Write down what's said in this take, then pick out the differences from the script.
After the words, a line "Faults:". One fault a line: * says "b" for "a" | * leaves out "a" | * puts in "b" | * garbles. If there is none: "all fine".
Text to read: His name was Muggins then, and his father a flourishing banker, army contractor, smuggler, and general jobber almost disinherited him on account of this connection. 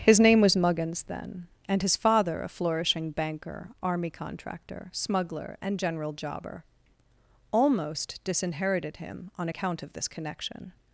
His name was Muggins then, and his father a flourishing banker, army contractor, smuggler, and general jobber almost disinherited him on account of this connection.
Faults:
all fine